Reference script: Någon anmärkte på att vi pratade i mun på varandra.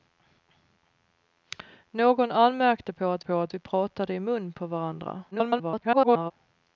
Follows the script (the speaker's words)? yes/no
no